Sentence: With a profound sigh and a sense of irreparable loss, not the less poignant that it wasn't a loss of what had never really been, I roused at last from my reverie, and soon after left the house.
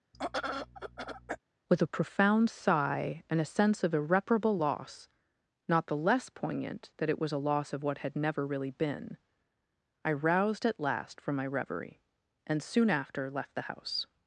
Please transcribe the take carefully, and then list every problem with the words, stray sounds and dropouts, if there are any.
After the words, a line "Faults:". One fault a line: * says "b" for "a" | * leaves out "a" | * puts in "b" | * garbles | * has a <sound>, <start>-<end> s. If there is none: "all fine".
With a profound sigh and a sense of irreparable loss, not the less poignant that it was a loss of what had never really been, I roused at last from my reverie, and soon after left the house.
Faults:
* has a throat clearing, 0.1-1.4 s
* says "was" for "wasn't"